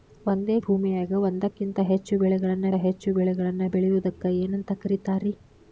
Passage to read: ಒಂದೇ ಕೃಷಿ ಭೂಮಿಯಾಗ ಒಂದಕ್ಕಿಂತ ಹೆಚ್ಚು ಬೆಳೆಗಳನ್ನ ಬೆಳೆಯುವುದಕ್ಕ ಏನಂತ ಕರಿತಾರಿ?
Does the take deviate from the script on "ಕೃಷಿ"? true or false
true